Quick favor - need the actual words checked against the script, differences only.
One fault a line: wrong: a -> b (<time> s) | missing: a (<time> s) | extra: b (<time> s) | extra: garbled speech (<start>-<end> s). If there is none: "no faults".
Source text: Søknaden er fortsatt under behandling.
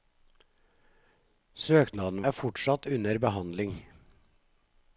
no faults